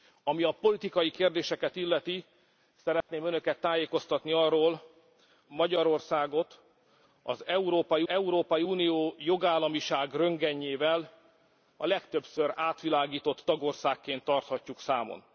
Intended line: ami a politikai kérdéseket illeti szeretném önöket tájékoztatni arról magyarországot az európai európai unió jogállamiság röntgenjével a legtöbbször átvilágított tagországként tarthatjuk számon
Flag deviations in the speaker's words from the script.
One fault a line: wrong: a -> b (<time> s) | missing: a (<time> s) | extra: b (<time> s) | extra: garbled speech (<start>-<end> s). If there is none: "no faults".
no faults